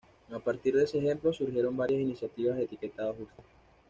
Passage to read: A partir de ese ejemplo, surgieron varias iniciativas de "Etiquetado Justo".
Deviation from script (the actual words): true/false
false